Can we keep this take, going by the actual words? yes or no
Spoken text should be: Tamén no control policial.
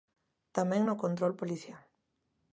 yes